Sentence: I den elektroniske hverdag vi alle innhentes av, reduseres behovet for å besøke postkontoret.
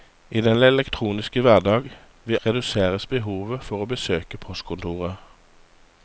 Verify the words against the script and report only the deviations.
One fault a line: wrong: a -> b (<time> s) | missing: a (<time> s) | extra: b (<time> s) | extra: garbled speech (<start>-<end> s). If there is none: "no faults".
missing: alle innhentes av (2.4 s)